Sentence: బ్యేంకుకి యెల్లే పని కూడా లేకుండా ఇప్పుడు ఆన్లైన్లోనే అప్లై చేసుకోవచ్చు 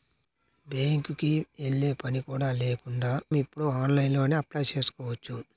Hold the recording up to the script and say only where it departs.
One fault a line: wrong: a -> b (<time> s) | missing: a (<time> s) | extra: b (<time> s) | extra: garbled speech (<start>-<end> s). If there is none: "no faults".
no faults